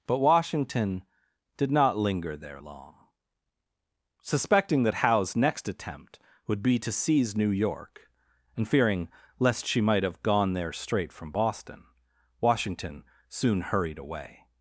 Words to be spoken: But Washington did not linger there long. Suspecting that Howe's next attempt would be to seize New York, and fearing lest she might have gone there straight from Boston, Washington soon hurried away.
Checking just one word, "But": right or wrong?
right